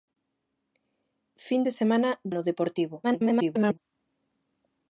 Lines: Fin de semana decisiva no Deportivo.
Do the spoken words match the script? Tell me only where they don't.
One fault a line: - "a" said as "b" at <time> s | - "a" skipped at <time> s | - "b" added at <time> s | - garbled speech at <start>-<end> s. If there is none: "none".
- "decisiva" skipped at 2.1 s
- garbled speech at 3.0-3.8 s